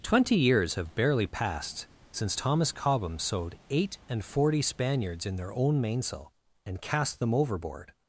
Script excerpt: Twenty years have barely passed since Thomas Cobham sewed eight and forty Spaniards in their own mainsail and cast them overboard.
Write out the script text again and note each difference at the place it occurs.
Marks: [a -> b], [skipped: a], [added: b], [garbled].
Twenty years have barely passed since Thomas Cobham sewed eight and forty Spaniards in their own mainsail and cast them overboard.